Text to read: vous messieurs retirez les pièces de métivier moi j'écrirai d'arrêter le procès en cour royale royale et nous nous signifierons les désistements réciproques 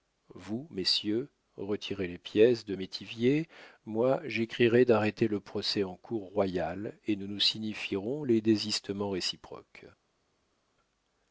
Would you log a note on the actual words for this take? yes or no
yes